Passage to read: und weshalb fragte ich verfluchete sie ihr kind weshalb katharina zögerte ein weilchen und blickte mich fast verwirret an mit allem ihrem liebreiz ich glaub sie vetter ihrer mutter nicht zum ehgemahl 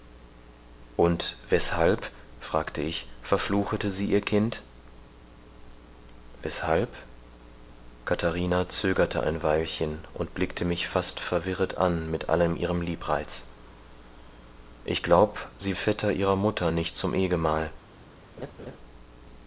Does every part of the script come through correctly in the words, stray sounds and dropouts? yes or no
no